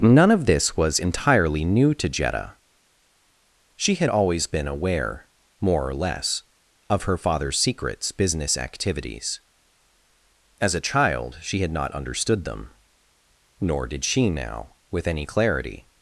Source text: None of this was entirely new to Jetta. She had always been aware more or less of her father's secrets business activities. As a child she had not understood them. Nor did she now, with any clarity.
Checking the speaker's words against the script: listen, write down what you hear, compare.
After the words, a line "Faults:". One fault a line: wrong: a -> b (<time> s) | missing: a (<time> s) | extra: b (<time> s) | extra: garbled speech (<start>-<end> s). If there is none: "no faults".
None of this was entirely new to Jetta. She had always been aware more or less of her father's secrets business activities. As a child she had not understood them. Nor did she now, with any clarity.
Faults:
no faults